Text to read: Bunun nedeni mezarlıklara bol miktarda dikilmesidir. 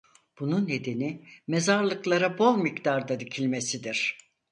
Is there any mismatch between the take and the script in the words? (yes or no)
no